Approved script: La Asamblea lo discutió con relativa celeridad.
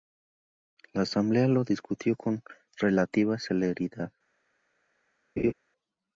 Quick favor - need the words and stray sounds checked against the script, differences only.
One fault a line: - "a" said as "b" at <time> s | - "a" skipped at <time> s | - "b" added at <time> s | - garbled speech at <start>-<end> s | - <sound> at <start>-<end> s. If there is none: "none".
- laugh at 5.4-5.5 s